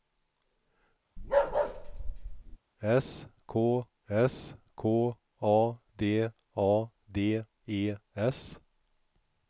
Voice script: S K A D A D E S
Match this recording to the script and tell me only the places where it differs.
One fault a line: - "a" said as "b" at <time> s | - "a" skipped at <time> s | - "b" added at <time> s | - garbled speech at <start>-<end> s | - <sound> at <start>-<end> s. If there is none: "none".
- bark at 1.2-2.6 s
- "s K" added at 4.1 s